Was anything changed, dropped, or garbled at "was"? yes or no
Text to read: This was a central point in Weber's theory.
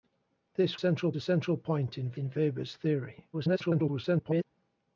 yes